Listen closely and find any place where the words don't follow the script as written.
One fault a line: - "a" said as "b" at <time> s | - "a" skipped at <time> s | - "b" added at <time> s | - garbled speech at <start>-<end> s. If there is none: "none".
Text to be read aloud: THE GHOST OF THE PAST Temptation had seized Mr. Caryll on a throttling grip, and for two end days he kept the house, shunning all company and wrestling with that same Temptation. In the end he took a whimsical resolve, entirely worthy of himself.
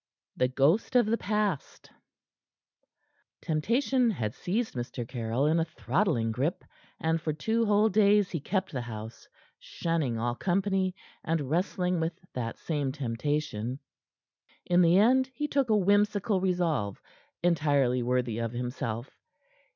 - "on" said as "in" at 5.4 s
- "end" said as "whole" at 7.7 s